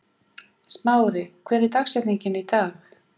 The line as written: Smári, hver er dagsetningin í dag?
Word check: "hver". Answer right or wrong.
right